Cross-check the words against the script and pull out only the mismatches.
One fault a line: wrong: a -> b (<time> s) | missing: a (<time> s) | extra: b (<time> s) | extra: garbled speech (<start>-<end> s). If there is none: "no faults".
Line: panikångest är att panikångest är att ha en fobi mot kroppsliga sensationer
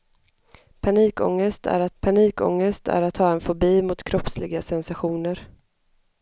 no faults